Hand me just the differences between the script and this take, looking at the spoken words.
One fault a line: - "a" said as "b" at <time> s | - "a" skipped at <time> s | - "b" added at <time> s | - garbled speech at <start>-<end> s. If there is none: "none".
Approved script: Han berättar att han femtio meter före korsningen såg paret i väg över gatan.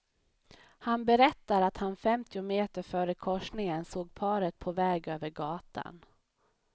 - "i" said as "på" at 4.6 s